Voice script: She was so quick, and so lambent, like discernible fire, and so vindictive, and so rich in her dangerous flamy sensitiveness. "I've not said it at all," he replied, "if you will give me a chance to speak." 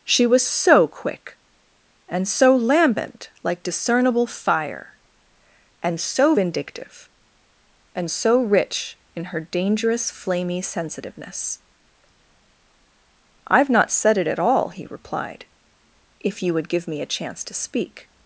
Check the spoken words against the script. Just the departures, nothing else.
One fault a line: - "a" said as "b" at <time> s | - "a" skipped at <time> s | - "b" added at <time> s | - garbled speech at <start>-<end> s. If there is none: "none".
- "will" said as "would" at 16.5 s